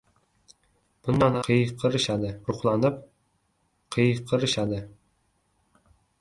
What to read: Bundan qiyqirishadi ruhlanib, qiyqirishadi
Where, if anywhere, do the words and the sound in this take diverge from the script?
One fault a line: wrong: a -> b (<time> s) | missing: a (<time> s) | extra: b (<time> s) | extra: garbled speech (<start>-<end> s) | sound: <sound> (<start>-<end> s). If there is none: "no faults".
no faults